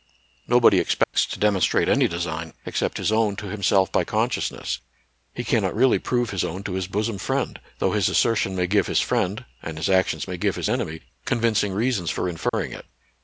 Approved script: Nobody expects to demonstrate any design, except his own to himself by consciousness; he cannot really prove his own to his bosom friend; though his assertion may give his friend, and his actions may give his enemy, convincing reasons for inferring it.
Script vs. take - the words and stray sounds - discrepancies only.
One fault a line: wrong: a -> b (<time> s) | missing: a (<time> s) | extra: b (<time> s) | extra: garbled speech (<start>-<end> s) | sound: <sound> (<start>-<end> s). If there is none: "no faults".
sound: dropout (1.0-1.1 s)
sound: dropout (12.5-12.5 s)